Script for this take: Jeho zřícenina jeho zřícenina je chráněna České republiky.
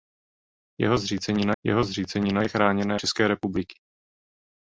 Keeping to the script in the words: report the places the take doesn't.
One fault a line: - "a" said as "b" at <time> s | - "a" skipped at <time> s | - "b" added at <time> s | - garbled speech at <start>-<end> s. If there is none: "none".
none